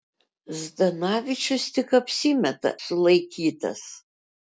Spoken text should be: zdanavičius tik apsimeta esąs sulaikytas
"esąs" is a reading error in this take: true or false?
true